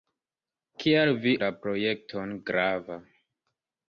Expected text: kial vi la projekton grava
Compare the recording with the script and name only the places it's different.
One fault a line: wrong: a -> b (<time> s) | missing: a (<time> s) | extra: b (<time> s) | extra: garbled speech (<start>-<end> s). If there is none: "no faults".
no faults